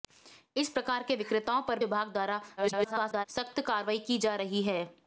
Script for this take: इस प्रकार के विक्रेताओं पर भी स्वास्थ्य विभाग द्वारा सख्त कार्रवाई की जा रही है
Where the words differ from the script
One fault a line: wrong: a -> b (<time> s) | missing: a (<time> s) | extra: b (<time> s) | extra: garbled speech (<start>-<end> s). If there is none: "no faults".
missing: भी स्वास्थ्य (1.8 s)
extra: garbled speech (2.6-3.3 s)